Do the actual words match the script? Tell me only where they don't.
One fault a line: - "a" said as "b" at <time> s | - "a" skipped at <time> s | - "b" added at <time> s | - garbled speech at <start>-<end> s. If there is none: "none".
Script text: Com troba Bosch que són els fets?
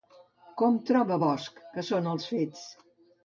none